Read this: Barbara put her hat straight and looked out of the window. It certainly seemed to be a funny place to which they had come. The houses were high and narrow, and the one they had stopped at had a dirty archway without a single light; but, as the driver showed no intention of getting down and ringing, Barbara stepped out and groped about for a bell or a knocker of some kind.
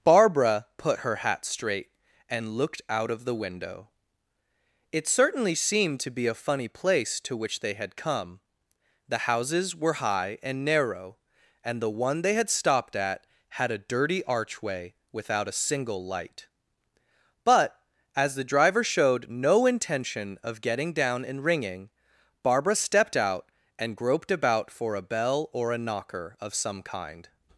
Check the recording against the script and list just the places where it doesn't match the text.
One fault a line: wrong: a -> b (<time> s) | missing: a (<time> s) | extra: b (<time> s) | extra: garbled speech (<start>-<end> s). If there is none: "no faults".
no faults